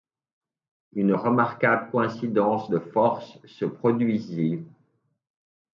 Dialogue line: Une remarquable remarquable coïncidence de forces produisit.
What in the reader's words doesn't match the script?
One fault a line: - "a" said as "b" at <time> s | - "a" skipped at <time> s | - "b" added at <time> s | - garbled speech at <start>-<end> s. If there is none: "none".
- "remarquable" skipped at 1.9 s
- "se" added at 3.5 s